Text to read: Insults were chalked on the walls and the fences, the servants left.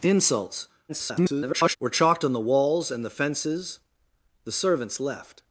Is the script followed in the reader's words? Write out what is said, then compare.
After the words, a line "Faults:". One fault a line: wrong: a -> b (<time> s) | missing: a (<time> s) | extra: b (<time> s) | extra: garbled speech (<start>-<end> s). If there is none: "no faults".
Insults [garbled] were chalked on the walls and the fences, the servants left.
Faults:
extra: garbled speech (0.9-1.8 s)